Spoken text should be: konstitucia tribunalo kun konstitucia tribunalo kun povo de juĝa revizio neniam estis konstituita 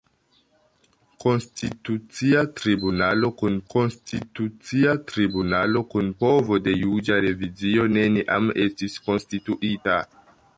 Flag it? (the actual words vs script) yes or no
no